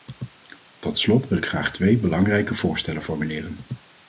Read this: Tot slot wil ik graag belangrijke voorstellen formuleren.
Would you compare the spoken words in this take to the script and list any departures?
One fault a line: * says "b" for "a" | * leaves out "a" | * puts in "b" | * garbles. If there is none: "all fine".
* puts in "twee"